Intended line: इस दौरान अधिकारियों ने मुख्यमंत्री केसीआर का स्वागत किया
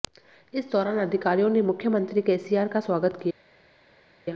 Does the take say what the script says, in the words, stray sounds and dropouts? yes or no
yes